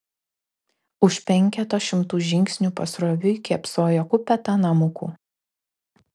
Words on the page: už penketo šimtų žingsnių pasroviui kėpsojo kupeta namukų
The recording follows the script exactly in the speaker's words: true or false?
true